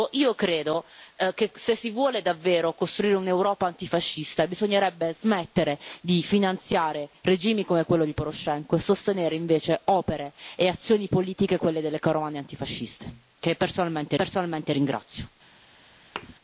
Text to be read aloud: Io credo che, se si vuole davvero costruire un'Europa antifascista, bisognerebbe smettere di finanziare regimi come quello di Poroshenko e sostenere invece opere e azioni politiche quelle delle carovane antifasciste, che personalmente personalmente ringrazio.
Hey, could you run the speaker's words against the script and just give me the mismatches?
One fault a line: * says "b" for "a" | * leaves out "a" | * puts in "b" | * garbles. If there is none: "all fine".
all fine